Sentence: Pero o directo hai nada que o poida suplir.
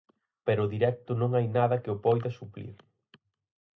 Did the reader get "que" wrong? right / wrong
right